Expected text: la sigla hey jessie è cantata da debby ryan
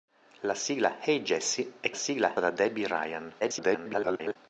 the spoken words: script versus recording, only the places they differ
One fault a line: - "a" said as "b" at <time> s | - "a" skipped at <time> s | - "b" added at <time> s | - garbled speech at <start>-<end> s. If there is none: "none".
- "cantata" said as "sigla" at 1.9 s
- garbled speech at 3.4-4.4 s